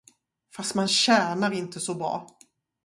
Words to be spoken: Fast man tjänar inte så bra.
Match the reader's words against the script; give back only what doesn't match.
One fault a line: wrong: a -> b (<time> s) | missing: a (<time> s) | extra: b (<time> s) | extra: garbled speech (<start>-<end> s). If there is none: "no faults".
no faults